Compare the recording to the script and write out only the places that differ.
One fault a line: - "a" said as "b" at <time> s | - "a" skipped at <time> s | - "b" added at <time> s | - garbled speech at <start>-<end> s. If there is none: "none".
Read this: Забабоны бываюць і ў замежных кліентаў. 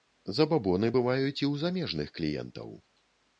none